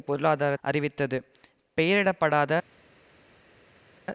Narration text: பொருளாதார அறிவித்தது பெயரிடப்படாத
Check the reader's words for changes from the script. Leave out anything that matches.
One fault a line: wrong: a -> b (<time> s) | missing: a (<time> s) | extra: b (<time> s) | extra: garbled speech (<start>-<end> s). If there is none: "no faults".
no faults